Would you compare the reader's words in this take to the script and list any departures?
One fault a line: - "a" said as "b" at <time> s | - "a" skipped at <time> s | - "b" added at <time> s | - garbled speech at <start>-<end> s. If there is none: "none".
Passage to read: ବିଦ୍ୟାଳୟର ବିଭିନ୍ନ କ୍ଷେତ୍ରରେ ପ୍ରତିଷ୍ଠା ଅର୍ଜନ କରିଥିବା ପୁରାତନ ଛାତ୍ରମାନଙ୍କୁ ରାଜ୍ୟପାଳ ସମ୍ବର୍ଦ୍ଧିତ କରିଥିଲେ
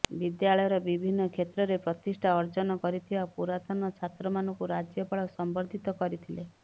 none